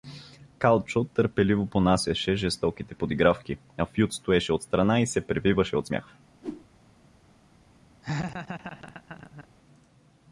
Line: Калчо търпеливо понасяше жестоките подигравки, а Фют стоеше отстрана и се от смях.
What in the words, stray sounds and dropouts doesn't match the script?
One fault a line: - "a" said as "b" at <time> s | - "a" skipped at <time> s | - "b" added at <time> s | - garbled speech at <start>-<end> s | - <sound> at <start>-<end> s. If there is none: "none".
- "превиваше" added at 5.3 s
- whoosh at 6.4-6.7 s
- laugh at 8.0-9.5 s